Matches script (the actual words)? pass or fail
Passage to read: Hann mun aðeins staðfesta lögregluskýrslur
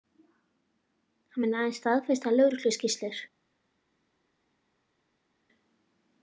pass